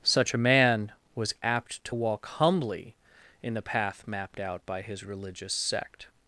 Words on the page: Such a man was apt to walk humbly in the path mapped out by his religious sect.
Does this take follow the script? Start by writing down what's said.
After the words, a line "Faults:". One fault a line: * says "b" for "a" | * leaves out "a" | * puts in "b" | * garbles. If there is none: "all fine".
Such a man was apt to walk humbly in the path mapped out by his religious sect.
Faults:
all fine